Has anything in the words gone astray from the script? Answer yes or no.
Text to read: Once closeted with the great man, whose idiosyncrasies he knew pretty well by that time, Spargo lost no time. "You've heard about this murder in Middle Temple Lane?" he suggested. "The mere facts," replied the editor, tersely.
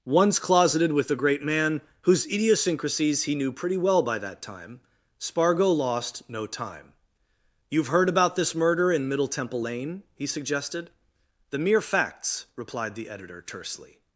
no